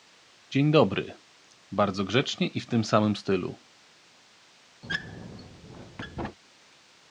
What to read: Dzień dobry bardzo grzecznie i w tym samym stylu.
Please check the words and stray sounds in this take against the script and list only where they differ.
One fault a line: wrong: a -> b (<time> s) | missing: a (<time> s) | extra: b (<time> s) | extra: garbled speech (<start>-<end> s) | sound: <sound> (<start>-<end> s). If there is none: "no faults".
sound: squeak (4.8-6.4 s)